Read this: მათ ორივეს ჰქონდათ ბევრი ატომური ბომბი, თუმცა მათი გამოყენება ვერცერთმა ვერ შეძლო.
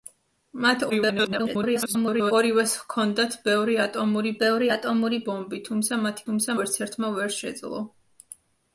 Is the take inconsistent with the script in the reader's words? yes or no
yes